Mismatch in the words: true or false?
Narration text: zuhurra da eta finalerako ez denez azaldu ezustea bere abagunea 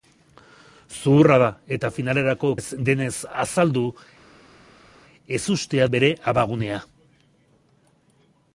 false